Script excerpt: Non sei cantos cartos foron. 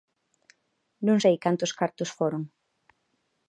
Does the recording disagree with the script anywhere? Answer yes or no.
no